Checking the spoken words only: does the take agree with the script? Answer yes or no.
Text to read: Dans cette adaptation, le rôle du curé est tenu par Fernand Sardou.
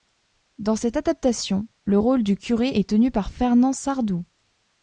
yes